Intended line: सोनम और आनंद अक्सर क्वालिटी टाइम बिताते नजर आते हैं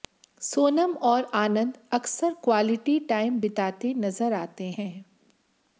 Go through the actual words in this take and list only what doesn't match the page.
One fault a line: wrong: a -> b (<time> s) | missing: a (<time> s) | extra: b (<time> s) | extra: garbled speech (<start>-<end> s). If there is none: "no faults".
no faults